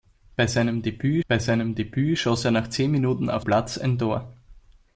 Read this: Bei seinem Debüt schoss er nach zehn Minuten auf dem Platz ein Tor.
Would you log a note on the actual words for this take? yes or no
yes